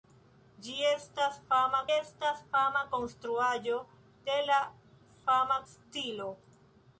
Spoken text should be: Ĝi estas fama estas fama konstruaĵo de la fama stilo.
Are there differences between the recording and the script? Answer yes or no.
no